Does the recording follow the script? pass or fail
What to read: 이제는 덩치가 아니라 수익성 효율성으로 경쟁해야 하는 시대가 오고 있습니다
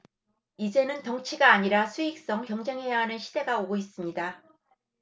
fail